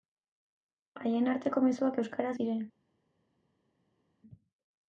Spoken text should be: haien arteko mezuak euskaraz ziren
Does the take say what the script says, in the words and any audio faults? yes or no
yes